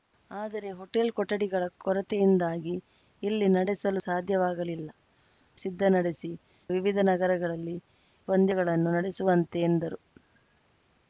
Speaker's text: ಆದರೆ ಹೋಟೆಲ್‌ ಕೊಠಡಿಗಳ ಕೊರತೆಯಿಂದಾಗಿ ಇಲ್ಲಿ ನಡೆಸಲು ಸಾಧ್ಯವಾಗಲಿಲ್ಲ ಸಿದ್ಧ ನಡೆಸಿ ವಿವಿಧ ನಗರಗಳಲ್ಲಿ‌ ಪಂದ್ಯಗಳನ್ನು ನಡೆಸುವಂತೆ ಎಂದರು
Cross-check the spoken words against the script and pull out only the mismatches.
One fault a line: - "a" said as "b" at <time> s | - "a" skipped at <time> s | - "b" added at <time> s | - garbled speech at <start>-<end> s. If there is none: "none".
none